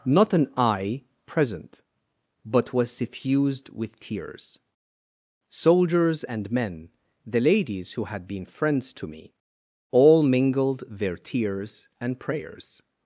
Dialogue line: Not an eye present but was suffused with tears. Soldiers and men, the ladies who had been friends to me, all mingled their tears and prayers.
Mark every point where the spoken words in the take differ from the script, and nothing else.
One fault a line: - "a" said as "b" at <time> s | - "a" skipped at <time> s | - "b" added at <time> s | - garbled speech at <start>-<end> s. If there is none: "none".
none